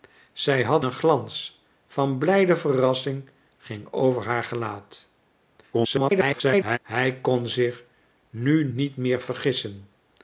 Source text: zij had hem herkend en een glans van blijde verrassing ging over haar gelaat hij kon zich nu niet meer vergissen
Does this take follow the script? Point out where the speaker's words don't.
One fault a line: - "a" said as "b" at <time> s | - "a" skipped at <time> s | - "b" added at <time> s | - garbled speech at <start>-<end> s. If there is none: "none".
- "hem herkend en" skipped at 0.8 s
- garbled speech at 5.7-6.8 s